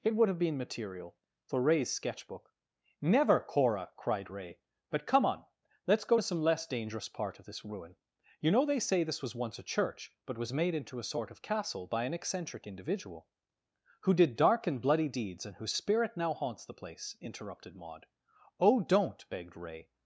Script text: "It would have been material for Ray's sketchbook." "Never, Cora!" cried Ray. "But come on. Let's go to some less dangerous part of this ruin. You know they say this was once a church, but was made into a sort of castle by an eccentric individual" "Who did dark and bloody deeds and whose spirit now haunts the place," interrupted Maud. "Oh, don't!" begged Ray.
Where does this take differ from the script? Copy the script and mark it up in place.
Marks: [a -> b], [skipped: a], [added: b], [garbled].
"It would have been material for Ray's sketchbook." "Never, Cora!" cried Ray. "But come on. Let's go to some less dangerous part of this ruin. You know they say this was once a church, but was made into a sort of castle by an eccentric individual" "Who did dark and bloody deeds and whose spirit now haunts the place," interrupted Maud. "Oh, don't!" begged Ray.